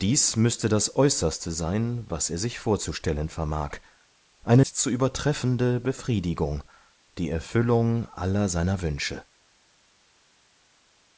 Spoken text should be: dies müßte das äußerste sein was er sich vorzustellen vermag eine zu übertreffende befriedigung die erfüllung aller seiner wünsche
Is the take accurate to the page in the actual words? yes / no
yes